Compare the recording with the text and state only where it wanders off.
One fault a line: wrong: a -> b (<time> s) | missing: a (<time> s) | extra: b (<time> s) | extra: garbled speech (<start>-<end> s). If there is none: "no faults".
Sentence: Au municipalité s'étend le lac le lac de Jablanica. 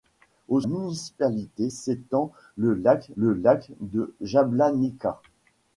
no faults